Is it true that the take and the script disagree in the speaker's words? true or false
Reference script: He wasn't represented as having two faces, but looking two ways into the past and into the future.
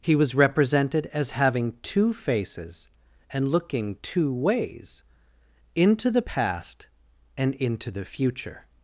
true